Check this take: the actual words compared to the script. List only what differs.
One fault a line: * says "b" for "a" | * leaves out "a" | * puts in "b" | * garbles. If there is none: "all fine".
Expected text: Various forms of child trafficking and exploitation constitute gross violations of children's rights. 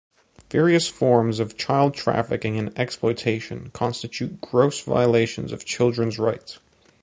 all fine